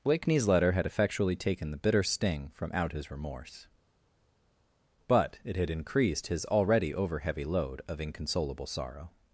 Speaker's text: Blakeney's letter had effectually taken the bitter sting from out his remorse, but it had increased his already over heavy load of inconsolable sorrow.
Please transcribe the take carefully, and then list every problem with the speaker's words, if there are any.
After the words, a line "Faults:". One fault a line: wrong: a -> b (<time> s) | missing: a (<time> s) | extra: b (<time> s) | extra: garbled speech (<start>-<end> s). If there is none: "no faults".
Blakeney's letter had effectually taken the bitter sting from out his remorse, but it had increased his already over heavy load of inconsolable sorrow.
Faults:
no faults